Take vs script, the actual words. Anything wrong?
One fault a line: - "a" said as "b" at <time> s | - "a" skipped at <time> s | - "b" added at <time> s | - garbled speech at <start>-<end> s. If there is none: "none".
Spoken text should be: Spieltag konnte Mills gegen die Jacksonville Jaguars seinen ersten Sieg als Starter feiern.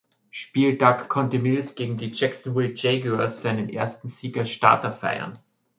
none